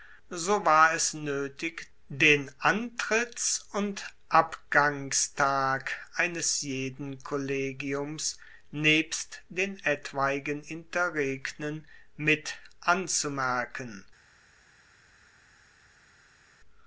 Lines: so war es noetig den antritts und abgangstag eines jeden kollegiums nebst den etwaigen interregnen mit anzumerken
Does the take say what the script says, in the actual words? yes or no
yes